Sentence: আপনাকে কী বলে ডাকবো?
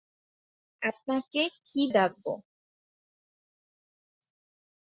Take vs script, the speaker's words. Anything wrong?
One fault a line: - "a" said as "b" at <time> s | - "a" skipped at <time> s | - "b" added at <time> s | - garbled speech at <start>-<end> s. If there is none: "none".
- "বলে" skipped at 1.8 s